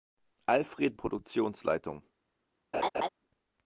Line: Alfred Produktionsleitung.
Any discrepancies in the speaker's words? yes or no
no